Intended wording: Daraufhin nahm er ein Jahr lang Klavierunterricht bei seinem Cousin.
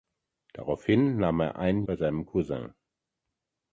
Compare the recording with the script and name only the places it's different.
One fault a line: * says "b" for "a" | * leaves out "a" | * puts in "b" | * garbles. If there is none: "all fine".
* leaves out "Jahr lang Klavierunterricht"